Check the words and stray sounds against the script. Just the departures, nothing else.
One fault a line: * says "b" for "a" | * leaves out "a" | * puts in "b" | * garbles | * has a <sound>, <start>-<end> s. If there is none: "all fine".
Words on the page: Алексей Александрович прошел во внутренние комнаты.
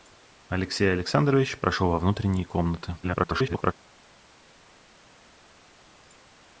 * garbles